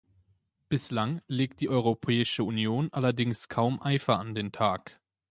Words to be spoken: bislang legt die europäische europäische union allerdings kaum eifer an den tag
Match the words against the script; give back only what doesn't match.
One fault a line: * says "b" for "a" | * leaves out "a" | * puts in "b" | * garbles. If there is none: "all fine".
* leaves out "europäische"